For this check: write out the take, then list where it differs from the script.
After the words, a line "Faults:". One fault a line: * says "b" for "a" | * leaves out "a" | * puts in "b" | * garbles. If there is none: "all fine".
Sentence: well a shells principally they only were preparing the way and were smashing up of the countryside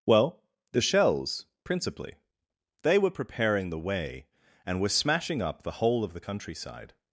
well the shells principally they were preparing the way and were smashing up the whole of the countryside
Faults:
* says "the" for "a"
* leaves out "only"
* puts in "the whole"